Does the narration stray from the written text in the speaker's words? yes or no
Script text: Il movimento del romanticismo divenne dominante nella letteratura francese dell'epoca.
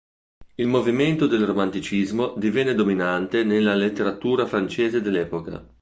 no